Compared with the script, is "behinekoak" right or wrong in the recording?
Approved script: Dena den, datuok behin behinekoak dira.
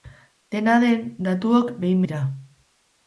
wrong